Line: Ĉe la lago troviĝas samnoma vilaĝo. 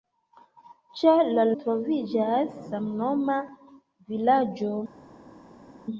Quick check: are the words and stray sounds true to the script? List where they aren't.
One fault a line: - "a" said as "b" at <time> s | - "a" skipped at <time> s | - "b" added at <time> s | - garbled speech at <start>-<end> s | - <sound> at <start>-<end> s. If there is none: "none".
- "lago" skipped at 1.4 s